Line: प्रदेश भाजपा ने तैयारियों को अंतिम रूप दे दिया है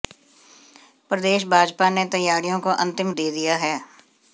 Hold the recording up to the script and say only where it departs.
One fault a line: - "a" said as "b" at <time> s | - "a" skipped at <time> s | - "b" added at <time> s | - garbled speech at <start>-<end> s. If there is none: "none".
- "रूप" skipped at 3.1 s